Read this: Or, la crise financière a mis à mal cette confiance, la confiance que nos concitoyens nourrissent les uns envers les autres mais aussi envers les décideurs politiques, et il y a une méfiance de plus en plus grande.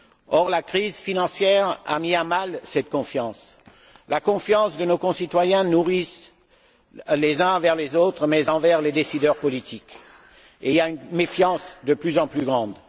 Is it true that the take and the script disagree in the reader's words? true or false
false